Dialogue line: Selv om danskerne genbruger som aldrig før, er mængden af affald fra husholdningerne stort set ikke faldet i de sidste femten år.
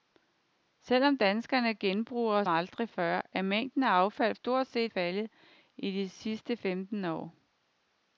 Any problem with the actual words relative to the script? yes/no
yes